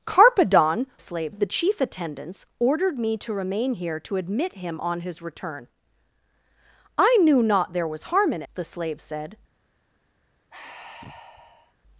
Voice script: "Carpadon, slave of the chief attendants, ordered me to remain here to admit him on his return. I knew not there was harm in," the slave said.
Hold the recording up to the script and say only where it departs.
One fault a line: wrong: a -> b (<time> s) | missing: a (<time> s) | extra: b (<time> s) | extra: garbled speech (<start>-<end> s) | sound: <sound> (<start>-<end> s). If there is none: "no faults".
sound: sigh (10.5-11.7 s)